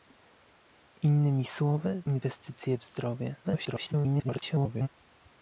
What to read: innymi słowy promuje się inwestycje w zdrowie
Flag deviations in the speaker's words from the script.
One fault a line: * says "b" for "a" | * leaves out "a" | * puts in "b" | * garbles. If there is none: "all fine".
* leaves out "promuje się"
* garbles